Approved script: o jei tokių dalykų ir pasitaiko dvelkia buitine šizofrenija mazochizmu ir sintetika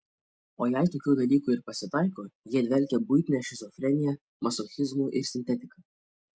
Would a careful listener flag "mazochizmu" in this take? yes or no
no